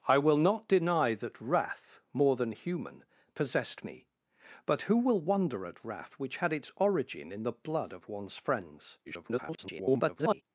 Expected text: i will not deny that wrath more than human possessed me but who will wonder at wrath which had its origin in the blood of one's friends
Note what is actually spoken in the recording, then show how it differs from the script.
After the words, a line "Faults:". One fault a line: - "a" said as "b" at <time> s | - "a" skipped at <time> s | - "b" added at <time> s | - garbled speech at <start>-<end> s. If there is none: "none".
i will not deny that wrath more than human possessed me but who will wonder at wrath which had its origin in the blood of one's friends [garbled]
Faults:
- garbled speech at 9.0-10.4 s